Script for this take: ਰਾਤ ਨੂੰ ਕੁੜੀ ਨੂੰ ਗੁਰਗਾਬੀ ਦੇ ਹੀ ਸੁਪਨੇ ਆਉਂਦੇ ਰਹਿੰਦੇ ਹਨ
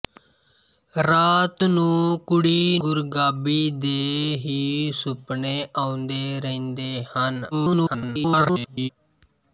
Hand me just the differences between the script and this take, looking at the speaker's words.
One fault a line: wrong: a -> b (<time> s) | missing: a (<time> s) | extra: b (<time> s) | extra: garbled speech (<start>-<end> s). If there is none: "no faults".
missing: ਨੂੰ (2.8 s)
extra: garbled speech (7.5-8.9 s)